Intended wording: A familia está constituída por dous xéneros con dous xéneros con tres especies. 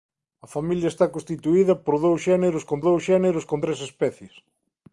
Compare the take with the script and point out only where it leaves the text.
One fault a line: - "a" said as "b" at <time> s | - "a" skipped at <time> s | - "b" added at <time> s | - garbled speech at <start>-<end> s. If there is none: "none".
none